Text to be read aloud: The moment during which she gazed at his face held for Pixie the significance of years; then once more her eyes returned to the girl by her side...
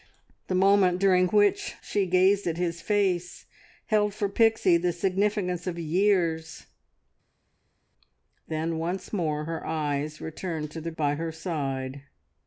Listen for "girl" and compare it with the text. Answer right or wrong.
wrong